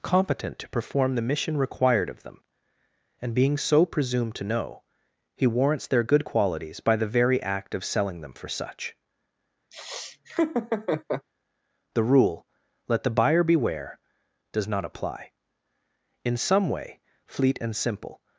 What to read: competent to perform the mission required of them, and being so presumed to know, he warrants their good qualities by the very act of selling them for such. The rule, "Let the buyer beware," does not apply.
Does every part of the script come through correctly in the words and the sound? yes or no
no